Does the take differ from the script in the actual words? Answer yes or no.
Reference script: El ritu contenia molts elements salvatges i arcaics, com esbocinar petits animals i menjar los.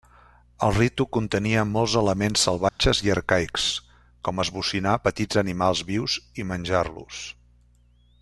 yes